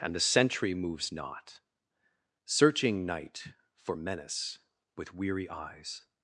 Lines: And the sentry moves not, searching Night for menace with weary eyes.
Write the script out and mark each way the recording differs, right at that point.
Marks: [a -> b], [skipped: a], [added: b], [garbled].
And the sentry moves not, searching Night for menace with weary eyes.